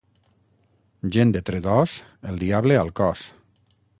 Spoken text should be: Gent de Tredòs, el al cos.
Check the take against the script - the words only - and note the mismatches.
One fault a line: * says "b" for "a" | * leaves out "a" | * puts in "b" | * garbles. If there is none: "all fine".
* puts in "diable"